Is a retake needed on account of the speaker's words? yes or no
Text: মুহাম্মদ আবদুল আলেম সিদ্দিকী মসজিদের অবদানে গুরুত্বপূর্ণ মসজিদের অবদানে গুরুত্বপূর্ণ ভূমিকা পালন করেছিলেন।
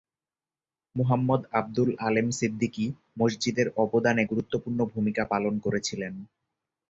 yes